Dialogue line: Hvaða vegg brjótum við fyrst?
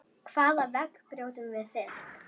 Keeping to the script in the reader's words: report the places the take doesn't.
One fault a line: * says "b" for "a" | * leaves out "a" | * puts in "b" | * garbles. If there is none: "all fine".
all fine